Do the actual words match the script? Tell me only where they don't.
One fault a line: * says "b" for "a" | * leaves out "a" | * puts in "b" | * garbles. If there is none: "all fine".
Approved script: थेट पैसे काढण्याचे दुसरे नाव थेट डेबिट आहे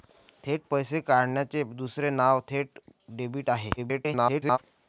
* garbles